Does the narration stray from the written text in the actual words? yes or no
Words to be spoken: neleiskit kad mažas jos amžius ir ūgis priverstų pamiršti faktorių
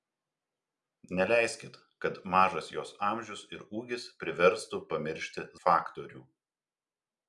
no